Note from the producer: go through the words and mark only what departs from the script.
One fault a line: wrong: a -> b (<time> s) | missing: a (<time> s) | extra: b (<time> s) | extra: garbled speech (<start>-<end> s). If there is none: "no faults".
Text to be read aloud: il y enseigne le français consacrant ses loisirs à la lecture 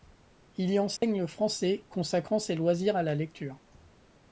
no faults